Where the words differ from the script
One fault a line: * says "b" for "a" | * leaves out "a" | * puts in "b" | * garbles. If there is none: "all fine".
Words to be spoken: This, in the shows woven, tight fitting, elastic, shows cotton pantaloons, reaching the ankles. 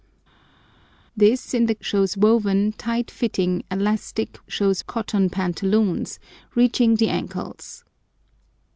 all fine